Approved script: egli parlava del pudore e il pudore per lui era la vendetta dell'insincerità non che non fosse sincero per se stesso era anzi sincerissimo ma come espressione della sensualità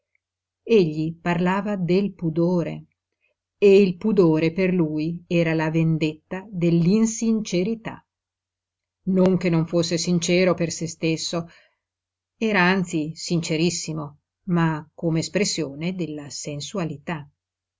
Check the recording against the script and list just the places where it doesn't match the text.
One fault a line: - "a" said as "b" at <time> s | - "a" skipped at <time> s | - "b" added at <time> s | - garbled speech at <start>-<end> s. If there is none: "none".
none